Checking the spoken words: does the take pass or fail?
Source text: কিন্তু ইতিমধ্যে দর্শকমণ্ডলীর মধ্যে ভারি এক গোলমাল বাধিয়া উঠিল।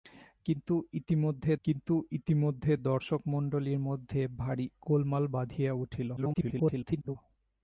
fail